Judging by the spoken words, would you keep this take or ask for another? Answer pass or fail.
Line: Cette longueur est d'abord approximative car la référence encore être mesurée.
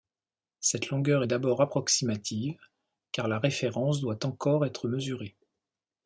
fail